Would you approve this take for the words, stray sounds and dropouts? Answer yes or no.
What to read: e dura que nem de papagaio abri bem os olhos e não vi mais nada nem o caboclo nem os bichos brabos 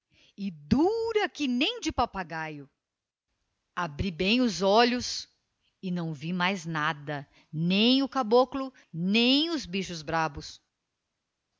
yes